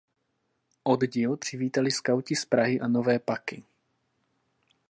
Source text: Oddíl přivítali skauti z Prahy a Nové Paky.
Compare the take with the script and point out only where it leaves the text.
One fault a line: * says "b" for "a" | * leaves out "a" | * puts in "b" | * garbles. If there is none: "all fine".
all fine